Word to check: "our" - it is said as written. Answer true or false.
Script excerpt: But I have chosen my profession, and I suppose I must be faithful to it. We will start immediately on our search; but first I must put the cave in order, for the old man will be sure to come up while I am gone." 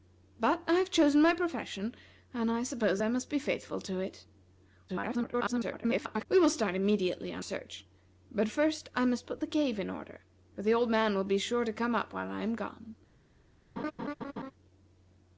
false